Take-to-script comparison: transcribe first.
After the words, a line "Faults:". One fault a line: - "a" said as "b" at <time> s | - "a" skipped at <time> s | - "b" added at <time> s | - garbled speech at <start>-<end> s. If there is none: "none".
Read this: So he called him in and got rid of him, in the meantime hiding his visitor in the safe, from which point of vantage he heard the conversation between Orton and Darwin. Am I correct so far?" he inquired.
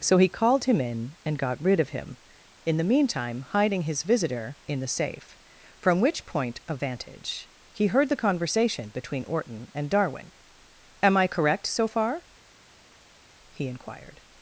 So he called him in and got rid of him, in the meantime hiding his visitor in the safe, from which point of vantage he heard the conversation between Orton and Darwin. Am I correct so far?" he inquired.
Faults:
none